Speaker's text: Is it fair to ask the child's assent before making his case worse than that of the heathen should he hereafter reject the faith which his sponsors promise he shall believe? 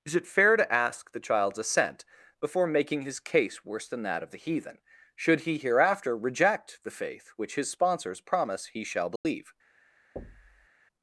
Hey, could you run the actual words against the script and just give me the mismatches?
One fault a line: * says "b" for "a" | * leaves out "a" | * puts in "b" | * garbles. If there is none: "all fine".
all fine